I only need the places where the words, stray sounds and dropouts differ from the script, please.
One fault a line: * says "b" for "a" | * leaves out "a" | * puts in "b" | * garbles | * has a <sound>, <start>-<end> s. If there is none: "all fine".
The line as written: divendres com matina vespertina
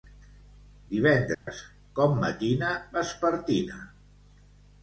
* has a dropout, 1.3-1.5 s